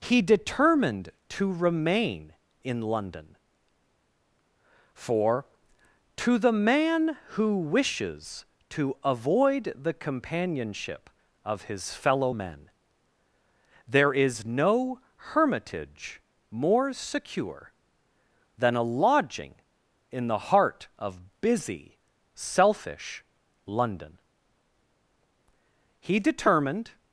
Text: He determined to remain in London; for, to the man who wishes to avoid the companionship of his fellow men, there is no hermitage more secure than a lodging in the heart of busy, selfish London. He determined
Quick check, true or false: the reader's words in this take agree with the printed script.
true